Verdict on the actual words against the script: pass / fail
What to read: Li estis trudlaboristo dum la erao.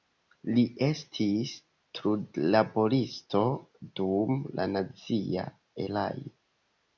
fail